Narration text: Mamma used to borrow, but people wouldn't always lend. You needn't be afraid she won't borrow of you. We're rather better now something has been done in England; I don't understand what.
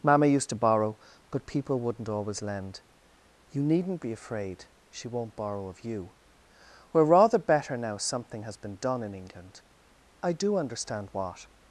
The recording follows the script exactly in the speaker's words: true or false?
false